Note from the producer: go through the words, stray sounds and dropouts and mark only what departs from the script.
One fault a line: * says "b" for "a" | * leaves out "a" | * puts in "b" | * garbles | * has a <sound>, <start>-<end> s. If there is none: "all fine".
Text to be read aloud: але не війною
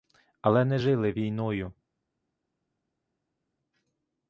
* puts in "жили"